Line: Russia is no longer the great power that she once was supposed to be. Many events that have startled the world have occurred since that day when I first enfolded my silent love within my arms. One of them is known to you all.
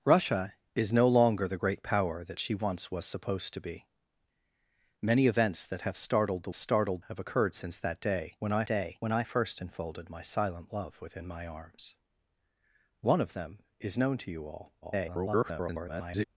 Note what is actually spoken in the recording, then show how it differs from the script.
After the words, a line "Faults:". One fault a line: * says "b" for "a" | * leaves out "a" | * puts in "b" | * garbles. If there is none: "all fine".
Russia is no longer the great power that she once was supposed to be. Many events that have startled the startled have occurred since that day when I day when I first enfolded my silent love within my arms. One of them is known to you all. [garbled]
Faults:
* says "startled" for "world"
* puts in "day when I"
* garbles